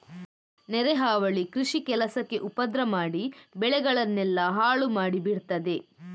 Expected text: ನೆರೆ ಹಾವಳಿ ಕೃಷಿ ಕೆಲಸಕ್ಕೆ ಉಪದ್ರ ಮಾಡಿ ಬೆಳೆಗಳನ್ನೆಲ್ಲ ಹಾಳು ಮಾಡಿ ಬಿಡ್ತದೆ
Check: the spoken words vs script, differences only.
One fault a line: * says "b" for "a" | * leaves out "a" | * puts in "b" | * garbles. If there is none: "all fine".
all fine